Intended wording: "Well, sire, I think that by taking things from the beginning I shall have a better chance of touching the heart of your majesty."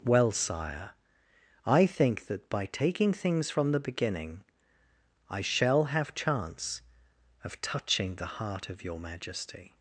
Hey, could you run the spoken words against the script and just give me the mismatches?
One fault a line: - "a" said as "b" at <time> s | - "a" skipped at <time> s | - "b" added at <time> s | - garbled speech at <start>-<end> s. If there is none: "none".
- "a better" skipped at 6.1 s